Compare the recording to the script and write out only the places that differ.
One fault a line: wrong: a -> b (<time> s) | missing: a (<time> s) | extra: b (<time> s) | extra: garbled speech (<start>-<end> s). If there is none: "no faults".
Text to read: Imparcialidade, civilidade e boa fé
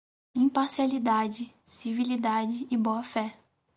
no faults